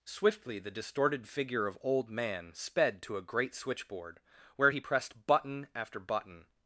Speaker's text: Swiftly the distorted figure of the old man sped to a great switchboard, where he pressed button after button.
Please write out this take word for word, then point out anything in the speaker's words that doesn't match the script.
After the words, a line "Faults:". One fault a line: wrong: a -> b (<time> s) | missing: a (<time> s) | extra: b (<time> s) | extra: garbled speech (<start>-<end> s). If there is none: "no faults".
Swiftly the distorted figure of old man sped to a great switchboard, where he pressed button after button.
Faults:
missing: the (1.8 s)